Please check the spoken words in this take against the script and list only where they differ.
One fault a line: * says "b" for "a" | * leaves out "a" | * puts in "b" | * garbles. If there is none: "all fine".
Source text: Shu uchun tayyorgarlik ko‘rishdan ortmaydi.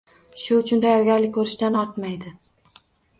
all fine